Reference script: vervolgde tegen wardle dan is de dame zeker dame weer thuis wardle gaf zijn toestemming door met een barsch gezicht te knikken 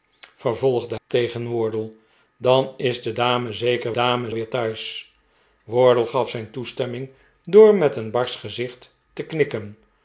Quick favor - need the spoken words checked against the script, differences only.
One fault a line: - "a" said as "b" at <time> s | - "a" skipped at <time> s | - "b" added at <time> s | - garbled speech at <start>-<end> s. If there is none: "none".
none